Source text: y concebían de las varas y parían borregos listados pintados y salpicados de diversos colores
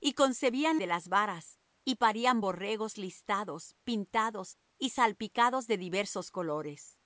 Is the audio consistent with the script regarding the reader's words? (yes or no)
yes